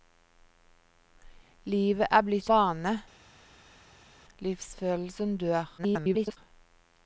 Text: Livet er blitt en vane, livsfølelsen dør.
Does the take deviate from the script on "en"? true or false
true